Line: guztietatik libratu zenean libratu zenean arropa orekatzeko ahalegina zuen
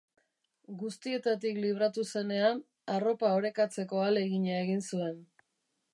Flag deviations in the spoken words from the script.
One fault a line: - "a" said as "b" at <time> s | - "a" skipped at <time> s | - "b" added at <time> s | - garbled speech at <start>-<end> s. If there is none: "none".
- "libratu zenean" skipped at 2.6 s
- "egin" added at 4.7 s